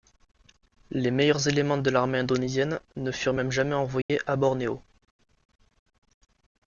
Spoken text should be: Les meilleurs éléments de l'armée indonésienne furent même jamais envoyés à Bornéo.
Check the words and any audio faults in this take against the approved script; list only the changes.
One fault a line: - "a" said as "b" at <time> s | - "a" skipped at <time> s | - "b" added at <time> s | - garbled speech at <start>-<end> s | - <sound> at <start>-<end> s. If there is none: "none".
- "ne" added at 3.0 s
- dropout at 4.0-4.1 s